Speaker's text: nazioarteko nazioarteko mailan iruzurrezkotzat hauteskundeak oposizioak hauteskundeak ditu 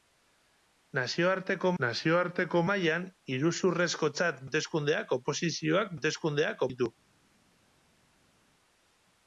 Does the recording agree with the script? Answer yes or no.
yes